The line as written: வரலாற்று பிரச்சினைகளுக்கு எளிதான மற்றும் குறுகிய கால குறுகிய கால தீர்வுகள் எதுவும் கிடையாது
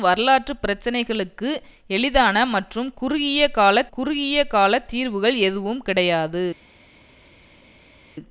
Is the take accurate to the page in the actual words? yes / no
yes